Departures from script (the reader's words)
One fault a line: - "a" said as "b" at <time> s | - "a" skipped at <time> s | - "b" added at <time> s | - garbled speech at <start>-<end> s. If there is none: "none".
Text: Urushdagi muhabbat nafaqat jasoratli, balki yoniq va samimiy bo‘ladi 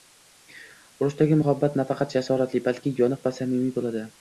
none